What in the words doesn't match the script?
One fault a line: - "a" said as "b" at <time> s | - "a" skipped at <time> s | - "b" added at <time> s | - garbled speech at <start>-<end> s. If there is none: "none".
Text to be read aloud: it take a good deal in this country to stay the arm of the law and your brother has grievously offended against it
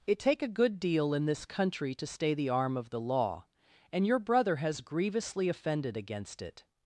none